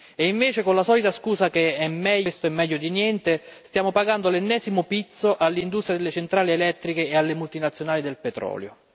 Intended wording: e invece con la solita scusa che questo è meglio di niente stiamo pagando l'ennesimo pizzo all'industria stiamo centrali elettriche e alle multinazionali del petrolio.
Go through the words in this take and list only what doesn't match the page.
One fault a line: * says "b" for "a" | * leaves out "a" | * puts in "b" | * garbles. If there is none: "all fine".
* says "delle" for "stiamo"